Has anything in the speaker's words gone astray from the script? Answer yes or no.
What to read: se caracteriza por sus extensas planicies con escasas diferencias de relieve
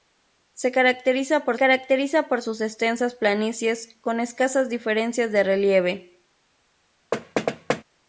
yes